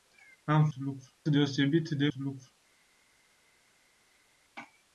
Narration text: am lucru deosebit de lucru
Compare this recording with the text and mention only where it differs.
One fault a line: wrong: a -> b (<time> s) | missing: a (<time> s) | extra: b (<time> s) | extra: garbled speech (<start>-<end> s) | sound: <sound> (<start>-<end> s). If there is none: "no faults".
no faults